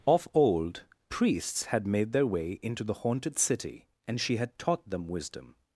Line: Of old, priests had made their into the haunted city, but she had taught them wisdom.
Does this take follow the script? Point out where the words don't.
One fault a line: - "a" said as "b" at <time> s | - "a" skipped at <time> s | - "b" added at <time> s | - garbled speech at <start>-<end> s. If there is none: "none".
- "way" added at 2.2 s
- "but" said as "and" at 4.1 s